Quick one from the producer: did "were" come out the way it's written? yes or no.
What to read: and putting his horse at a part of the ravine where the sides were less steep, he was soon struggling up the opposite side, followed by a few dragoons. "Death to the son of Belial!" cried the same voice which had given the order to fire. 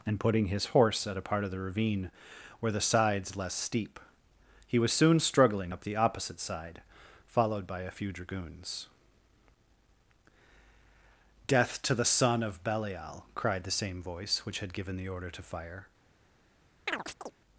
no